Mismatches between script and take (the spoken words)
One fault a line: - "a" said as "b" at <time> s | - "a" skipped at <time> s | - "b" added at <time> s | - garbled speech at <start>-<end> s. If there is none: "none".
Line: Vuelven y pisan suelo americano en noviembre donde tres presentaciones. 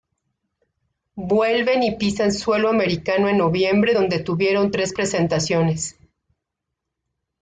- "tuvieron" added at 4.2 s